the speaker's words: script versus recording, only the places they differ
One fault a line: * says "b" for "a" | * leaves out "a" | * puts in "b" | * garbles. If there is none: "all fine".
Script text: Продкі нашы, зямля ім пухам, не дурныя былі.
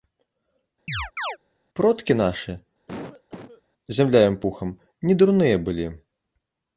all fine